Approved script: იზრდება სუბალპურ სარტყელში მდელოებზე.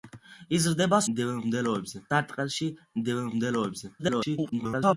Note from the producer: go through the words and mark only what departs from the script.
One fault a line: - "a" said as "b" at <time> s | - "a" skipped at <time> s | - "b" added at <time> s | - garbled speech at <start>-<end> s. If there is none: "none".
- "სუბალპურ" said as "მდელოებზე" at 1.2 s
- garbled speech at 4.0-5.0 s